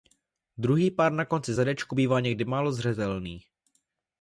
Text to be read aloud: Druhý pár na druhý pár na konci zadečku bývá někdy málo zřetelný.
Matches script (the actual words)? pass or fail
fail